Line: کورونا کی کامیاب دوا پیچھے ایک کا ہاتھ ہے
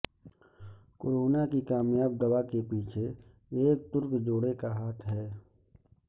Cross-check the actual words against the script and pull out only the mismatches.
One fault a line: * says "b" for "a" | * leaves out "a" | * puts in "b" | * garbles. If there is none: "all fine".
* puts in "کے"
* puts in "ترک جوڑے"